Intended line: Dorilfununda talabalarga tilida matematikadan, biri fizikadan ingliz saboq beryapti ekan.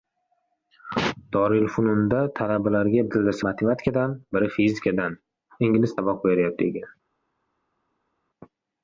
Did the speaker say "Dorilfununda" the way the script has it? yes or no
yes